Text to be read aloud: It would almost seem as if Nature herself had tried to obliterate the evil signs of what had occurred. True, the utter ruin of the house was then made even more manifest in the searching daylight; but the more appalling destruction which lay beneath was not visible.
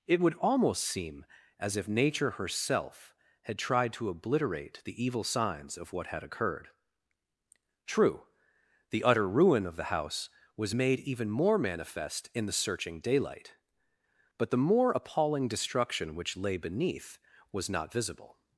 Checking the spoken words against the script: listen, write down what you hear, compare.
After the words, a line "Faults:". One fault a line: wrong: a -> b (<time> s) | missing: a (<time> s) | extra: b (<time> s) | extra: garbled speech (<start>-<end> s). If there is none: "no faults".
It would almost seem as if Nature herself had tried to obliterate the evil signs of what had occurred. True, the utter ruin of the house was made even more manifest in the searching daylight; but the more appalling destruction which lay beneath was not visible.
Faults:
missing: then (10.8 s)